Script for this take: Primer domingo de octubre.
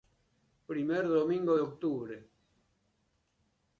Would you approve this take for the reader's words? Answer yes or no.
yes